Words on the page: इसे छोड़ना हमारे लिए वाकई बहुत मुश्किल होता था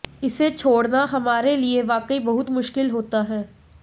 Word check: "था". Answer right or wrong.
wrong